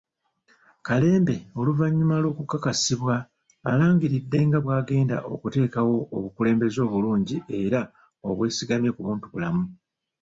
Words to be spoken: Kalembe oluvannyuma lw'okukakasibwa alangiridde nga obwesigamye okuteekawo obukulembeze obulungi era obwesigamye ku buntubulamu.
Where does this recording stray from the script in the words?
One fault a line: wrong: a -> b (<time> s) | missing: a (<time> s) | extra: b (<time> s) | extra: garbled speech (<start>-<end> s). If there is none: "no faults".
wrong: obwesigamye -> bw'agenda (4.6 s)